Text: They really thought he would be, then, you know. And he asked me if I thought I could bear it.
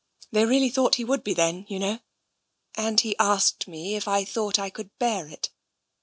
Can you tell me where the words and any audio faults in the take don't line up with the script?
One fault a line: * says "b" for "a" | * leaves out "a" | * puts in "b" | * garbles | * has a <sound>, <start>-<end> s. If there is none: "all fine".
all fine